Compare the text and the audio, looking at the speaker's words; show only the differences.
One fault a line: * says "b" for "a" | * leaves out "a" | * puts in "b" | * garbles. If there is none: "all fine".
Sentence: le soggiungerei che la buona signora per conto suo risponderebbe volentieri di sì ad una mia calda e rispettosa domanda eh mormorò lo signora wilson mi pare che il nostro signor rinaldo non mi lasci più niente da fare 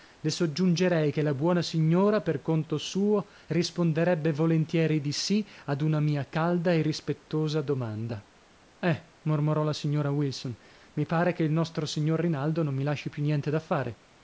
* says "la" for "lo"